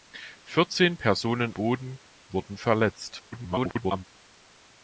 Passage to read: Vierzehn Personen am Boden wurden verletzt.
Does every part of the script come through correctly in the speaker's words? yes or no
no